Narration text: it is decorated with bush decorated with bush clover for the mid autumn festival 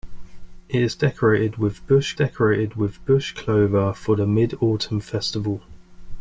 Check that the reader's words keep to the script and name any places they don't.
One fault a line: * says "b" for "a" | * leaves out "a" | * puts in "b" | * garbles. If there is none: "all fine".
all fine